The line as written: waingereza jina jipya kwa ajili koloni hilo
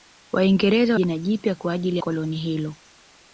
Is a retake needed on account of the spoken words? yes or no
no